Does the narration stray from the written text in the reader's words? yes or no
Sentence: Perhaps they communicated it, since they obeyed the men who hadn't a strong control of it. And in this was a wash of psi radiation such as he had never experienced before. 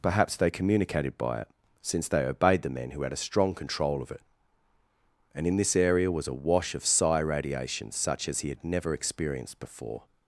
yes